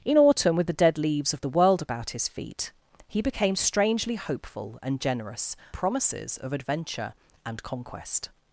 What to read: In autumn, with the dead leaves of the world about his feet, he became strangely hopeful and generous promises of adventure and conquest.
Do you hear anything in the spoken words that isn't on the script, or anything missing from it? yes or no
no